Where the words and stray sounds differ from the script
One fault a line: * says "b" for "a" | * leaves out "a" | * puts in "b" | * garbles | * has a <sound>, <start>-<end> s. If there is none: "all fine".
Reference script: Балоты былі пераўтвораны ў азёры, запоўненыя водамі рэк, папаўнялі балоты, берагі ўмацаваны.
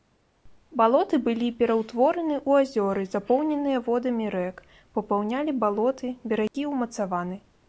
* has a dropout, 6.5-6.5 s